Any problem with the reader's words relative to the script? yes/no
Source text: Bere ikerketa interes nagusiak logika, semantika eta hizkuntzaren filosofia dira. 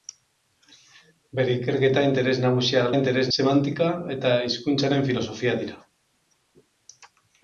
yes